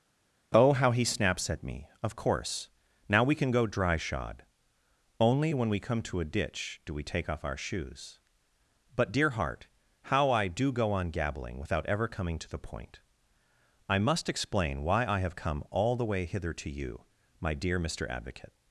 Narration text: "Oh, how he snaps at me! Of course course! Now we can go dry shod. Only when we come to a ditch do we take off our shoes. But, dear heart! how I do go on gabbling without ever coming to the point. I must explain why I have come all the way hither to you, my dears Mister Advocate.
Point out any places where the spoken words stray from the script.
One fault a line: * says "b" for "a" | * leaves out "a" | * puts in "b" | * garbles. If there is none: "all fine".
* leaves out "course"
* says "dear" for "dears"